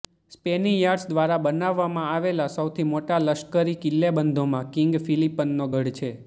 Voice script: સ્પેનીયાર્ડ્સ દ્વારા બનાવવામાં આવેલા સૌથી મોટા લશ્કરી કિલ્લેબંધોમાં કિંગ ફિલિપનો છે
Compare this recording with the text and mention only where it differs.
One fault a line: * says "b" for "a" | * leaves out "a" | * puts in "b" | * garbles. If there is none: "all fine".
* puts in "ગઢ"